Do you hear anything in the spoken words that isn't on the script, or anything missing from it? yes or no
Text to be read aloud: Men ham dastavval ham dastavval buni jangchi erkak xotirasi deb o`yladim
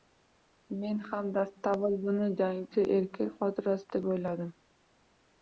yes